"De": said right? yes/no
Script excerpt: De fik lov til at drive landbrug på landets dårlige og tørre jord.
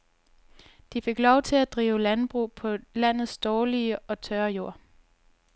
yes